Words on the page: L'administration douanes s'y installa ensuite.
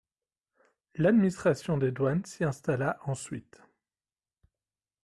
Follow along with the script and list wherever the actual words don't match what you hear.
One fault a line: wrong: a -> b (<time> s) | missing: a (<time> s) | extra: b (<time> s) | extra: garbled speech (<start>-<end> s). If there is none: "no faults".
extra: des (1.8 s)